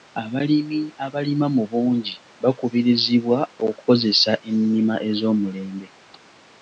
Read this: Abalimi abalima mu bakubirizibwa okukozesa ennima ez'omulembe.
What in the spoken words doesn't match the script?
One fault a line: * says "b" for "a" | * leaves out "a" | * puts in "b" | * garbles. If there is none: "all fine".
* puts in "bungi"